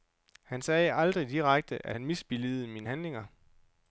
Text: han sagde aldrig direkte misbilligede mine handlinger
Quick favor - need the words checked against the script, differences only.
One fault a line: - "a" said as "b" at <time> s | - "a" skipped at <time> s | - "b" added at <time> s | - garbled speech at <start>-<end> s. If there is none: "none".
- "at han" added at 1.9 s